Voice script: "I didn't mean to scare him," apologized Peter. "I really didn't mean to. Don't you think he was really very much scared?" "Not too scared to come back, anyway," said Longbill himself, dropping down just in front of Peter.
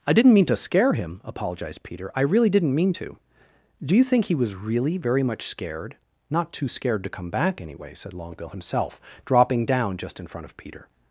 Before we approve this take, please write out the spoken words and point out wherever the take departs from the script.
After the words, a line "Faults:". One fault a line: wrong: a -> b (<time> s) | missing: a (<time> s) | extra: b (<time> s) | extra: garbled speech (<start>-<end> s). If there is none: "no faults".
"I didn't mean to scare him," apologized Peter. "I really didn't mean to. Do you think he was really very much scared?" "Not too scared to come back, anyway," said Longbill himself, dropping down just in front of Peter.
Faults:
wrong: Don't -> Do (3.8 s)